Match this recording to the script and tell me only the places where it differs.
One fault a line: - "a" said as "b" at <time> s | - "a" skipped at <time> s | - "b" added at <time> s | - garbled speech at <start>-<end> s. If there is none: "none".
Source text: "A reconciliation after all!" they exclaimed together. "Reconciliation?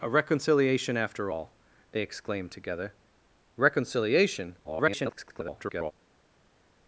- garbled speech at 4.6-5.9 s